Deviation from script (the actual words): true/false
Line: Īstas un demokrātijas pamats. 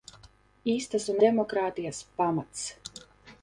false